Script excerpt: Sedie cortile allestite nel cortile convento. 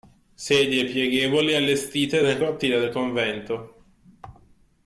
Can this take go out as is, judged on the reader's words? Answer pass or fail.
fail